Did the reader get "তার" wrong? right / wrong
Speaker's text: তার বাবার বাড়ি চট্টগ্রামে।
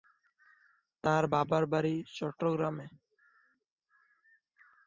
right